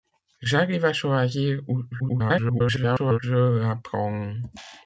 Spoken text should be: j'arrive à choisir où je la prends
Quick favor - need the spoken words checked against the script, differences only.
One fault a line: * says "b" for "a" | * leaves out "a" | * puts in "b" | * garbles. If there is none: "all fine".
* garbles